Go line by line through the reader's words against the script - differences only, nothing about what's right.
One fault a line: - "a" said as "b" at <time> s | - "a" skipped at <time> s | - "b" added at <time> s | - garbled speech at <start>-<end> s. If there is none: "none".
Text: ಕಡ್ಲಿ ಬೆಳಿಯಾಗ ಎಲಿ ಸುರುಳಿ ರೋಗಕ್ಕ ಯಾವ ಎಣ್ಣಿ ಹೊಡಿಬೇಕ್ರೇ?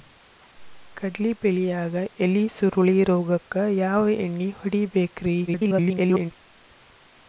- garbled speech at 5.5-6.3 s